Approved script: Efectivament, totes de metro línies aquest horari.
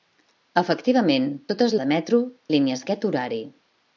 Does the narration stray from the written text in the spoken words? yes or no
no